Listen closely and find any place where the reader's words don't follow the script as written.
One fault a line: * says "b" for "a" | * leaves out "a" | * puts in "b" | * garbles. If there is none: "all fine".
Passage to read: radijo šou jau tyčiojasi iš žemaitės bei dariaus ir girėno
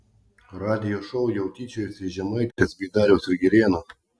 all fine